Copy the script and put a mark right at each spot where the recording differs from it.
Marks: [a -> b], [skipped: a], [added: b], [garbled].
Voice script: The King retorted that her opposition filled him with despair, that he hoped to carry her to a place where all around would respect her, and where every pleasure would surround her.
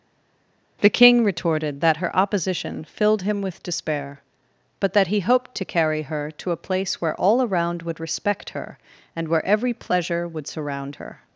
The King retorted that her opposition filled him with despair, [added: but] that he hoped to carry her to a place where all around would respect her, and where every pleasure would surround her.